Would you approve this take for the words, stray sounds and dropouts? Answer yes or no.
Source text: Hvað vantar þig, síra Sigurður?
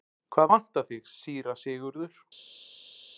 yes